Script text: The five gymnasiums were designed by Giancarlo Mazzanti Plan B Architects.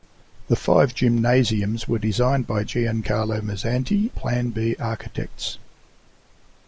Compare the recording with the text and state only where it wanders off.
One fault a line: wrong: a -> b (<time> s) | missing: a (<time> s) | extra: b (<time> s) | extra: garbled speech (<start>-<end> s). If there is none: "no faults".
no faults